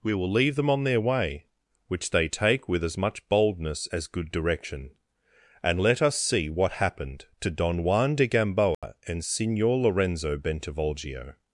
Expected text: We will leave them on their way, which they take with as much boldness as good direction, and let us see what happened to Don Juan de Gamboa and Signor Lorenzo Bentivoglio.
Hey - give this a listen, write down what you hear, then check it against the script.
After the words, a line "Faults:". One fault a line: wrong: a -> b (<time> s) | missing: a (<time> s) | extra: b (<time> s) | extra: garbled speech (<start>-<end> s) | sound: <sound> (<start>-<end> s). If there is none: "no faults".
We will leave them on their way, which they take with as much boldness as good direction, and let us see what happened to Don Juan de Gamboa and Signor Lorenzo Bentivoglio.
Faults:
sound: dropout (8.7-8.8 s)